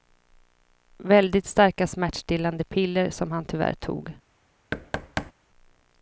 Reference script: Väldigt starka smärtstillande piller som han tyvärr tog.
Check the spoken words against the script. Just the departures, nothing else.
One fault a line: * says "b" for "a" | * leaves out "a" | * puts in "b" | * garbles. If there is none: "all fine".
all fine